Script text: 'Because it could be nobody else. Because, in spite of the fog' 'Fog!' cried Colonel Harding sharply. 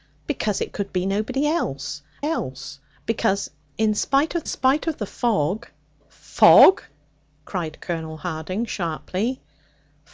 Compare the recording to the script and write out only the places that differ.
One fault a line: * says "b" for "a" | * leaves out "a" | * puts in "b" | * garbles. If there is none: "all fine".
* puts in "else"
* puts in "spite of"